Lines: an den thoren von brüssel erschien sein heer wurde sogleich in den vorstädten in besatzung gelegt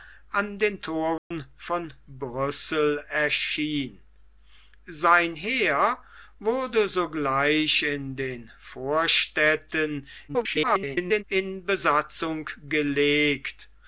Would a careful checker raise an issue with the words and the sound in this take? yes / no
yes